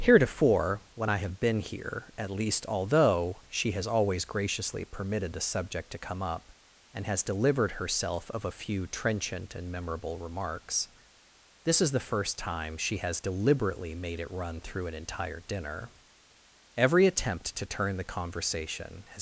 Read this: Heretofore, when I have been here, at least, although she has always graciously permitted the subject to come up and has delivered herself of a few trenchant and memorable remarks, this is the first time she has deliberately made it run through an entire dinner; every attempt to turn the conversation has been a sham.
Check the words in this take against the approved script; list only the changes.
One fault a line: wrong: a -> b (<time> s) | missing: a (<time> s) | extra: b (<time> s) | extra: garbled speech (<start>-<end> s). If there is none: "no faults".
missing: been a sham (19.2 s)